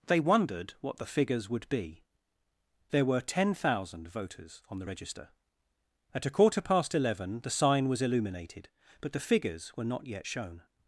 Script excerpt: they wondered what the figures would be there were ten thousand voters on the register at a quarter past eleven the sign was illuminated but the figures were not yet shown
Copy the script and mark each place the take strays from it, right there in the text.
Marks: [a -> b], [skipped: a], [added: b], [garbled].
they wondered what the figures would be there were ten thousand voters on the register at a quarter past eleven the sign was illuminated but the figures were not yet shown